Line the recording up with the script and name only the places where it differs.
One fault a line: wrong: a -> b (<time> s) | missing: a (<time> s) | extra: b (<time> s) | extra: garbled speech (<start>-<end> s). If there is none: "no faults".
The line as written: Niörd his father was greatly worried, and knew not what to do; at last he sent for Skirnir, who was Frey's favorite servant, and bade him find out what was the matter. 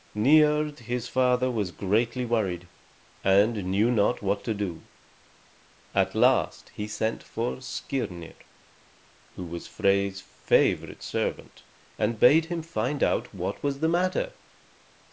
no faults